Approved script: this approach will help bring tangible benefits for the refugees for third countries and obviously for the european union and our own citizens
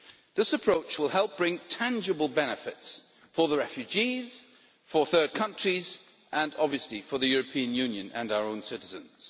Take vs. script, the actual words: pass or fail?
pass